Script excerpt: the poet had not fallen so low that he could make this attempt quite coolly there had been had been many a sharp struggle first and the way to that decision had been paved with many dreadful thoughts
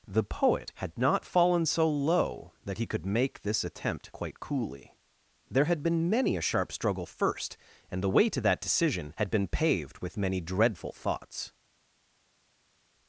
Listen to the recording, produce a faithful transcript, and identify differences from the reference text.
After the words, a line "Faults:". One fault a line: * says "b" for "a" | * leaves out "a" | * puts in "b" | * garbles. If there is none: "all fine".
the poet had not fallen so low that he could make this attempt quite coolly there had been many a sharp struggle first and the way to that decision had been paved with many dreadful thoughts
Faults:
* leaves out "had been"